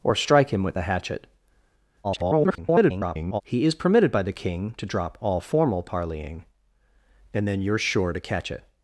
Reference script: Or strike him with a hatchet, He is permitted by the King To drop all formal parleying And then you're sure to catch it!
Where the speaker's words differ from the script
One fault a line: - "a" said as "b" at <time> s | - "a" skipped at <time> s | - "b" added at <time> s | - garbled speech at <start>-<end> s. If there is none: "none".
- garbled speech at 2.0-3.4 s